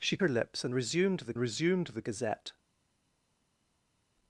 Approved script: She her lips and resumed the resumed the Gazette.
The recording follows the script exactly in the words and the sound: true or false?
true